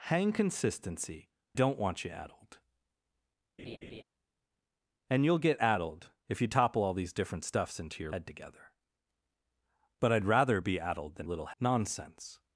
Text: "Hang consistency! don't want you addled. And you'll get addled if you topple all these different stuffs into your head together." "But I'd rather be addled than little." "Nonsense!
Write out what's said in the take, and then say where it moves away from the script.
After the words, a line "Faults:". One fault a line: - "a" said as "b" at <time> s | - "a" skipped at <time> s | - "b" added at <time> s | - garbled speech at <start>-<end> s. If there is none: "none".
"Hang consistency! don't want you addled. And you'll get addled if you topple all these different stuffs into your head together." "But I'd rather be addled than little." "Nonsense!
Faults:
none